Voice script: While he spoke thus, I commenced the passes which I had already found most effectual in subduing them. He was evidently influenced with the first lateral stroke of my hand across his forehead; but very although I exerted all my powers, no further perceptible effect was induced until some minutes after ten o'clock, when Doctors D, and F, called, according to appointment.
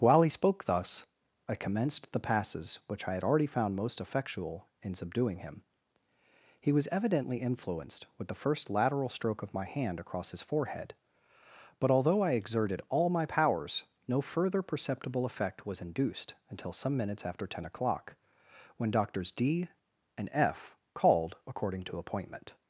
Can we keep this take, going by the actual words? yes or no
no